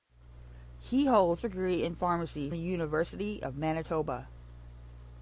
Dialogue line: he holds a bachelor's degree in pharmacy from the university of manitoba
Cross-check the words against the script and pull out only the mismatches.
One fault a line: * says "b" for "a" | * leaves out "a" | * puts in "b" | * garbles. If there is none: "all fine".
* leaves out "a bachelor's"
* leaves out "from"